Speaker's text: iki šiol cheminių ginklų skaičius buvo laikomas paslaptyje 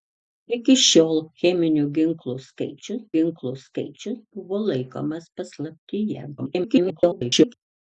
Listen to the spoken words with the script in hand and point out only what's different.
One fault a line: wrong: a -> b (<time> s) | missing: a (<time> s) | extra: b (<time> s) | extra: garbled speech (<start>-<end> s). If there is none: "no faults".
extra: ginklų skaičius (3.2 s)
extra: garbled speech (6.4-7.5 s)